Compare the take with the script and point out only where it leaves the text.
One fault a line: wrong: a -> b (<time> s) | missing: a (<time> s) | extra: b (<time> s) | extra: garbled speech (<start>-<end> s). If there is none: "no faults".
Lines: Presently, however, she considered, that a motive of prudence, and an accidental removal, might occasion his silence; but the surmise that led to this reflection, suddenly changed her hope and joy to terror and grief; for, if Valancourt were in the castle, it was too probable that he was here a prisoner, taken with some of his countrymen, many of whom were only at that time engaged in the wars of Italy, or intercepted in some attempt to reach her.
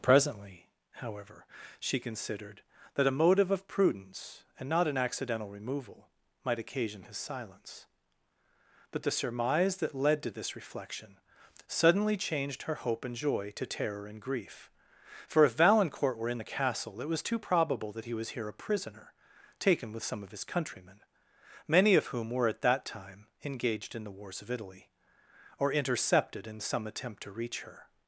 extra: not (4.7 s)
missing: only (22.5 s)